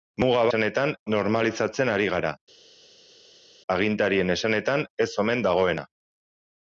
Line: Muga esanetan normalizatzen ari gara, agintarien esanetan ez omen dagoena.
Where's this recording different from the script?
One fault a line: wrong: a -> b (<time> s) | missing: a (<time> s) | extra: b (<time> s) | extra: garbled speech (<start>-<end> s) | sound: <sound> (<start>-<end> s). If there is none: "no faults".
no faults